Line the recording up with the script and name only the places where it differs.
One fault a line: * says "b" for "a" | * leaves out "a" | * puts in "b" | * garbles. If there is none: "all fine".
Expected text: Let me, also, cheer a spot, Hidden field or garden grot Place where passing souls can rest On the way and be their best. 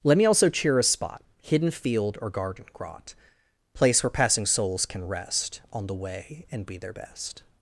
all fine